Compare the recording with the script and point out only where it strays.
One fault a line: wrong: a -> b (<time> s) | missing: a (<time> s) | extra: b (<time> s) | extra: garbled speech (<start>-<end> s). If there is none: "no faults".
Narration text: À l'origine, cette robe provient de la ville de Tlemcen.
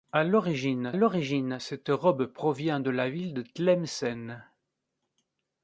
extra: l'origine (0.9 s)